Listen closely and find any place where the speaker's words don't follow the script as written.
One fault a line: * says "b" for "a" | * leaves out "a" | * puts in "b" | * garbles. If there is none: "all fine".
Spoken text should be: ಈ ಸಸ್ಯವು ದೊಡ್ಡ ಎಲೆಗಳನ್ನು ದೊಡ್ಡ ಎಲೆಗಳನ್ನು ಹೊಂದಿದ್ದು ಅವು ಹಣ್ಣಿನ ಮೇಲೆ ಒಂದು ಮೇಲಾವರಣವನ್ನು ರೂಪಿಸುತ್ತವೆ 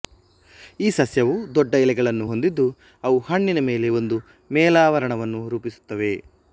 * leaves out "ದೊಡ್ಡ ಎಲೆಗಳನ್ನು"